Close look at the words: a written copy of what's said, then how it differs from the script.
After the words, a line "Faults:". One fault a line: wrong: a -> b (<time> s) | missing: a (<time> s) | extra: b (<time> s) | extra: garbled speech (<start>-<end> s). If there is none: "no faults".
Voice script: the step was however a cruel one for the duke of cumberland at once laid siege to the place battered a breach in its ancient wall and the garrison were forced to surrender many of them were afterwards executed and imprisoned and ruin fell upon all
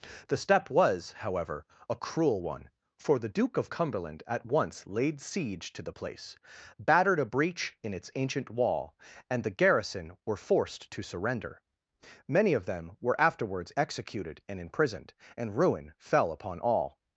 the step was however a cruel one for the duke of cumberland at once laid siege to the place battered a breach in its ancient wall and the garrison were forced to surrender many of them were afterwards executed and imprisoned and ruin fell upon all
Faults:
no faults